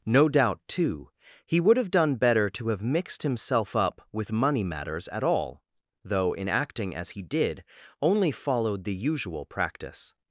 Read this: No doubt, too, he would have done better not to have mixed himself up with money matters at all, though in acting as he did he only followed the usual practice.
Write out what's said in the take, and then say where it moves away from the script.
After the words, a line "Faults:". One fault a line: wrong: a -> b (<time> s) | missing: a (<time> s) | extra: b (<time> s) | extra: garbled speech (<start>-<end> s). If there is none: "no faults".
No doubt, too, he would have done better to have mixed himself up with money matters at all, though in acting as he did only followed the usual practice.
Faults:
missing: not (2.5 s)
missing: he (7.6 s)